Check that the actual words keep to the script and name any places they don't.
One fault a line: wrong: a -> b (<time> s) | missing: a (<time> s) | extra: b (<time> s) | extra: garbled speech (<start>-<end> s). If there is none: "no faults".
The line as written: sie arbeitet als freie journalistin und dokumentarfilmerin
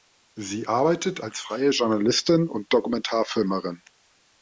no faults